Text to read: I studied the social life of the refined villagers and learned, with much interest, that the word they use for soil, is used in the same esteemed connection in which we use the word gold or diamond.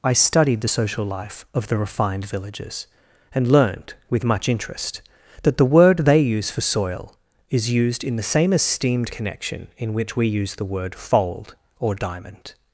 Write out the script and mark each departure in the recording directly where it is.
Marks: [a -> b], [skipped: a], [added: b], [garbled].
I studied the social life of the refined villagers and learned, with much interest, that the word they use for soil, is used in the same esteemed connection in which we use the word [gold -> fold] or diamond.